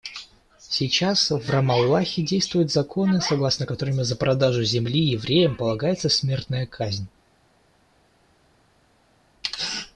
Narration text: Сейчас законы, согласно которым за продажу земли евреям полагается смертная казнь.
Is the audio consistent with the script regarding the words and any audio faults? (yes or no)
no